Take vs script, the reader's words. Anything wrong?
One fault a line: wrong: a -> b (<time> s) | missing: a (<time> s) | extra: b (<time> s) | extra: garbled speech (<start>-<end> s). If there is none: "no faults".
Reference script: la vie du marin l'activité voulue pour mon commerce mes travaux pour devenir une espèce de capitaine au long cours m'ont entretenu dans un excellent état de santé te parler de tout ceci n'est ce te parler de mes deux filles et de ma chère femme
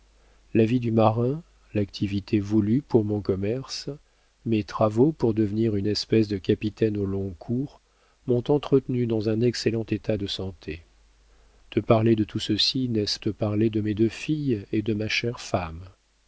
no faults